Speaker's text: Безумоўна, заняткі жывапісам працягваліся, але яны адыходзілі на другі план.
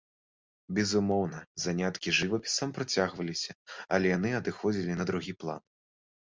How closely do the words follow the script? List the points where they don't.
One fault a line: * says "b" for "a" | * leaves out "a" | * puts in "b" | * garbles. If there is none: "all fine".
all fine